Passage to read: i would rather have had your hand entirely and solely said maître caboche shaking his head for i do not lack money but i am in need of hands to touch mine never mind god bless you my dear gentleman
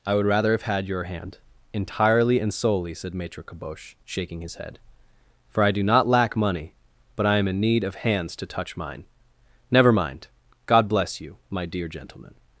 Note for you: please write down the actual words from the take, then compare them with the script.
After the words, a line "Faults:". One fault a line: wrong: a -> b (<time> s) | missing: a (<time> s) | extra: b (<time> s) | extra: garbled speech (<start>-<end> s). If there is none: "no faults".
i would rather have had your hand entirely and solely said maître caboche shaking his head for i do not lack money but i am in need of hands to touch mine never mind god bless you my dear gentleman
Faults:
no faults